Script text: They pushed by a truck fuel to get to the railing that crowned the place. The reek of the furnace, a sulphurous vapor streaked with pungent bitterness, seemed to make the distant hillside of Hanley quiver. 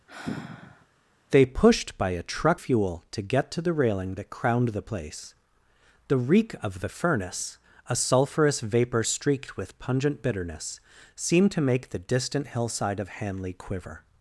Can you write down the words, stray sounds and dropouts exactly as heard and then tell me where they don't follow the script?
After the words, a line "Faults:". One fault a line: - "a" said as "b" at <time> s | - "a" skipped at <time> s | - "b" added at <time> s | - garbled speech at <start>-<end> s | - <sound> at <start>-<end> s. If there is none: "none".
They pushed by a truck fuel to get to the railing that crowned the place. The reek of the furnace, a sulphurous vapor streaked with pungent bitterness, seemed to make the distant hillside of Hanley quiver.
Faults:
- sigh at 0.1-0.9 s